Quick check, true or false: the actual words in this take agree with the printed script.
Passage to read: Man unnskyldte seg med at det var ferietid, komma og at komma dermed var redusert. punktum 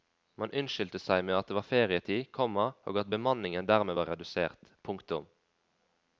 false